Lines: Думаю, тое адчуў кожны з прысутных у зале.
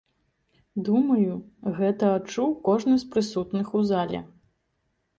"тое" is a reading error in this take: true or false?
true